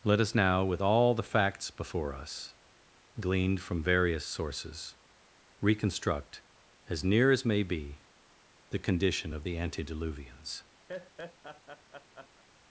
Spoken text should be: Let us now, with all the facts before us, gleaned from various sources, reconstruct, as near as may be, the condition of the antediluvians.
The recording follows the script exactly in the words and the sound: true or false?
false